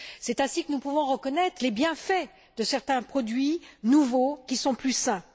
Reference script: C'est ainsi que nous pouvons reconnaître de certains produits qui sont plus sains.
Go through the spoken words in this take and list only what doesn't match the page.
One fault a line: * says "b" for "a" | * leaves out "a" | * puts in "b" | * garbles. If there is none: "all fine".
* puts in "les bienfaits"
* puts in "nouveaux"